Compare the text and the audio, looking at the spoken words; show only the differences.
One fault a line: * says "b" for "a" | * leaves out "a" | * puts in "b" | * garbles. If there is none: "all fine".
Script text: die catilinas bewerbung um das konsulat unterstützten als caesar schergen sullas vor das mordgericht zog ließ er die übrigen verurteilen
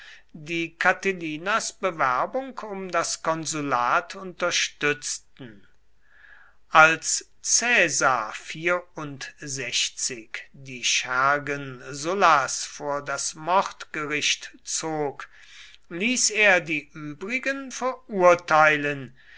* puts in "die"